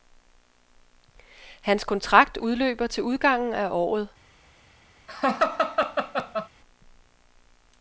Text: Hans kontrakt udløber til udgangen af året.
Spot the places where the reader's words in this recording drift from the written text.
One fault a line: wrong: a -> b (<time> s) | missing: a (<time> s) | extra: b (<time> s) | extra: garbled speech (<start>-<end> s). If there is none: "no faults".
no faults